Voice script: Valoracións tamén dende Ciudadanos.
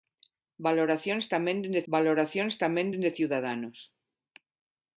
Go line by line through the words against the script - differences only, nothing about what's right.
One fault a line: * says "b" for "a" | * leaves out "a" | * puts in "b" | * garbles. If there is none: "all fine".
* puts in "valoracións tamén dende"